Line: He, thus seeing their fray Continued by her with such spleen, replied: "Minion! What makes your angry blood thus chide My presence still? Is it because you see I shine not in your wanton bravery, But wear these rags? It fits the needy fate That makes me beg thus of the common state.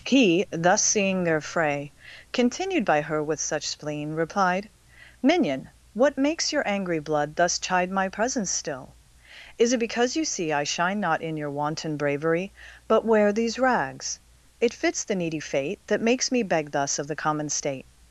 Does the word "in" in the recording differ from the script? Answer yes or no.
no